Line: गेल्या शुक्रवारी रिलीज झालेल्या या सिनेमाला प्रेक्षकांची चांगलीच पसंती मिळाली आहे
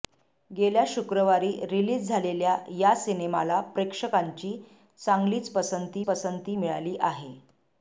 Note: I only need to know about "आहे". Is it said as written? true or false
true